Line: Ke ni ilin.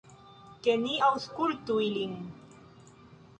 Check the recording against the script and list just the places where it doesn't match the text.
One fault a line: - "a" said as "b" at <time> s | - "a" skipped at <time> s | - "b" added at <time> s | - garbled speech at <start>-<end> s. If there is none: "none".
- "aŭskultu" added at 1.1 s